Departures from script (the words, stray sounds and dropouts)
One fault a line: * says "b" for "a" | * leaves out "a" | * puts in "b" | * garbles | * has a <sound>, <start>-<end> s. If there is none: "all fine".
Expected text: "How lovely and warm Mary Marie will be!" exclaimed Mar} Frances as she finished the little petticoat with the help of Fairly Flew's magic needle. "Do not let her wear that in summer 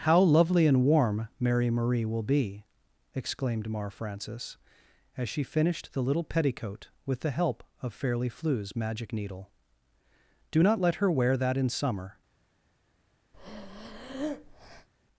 * has a breath, 13.3-14.9 s